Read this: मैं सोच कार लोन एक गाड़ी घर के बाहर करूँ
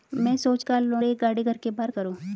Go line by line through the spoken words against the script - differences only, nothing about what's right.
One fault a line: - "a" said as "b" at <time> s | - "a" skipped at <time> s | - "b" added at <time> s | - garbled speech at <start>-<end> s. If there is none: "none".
none